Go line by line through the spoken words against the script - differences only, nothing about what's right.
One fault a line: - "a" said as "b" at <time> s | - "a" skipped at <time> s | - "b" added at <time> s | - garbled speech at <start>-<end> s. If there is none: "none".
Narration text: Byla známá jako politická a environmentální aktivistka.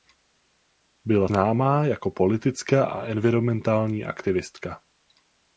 none